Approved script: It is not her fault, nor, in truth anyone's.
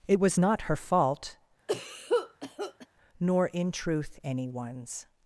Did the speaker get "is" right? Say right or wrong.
wrong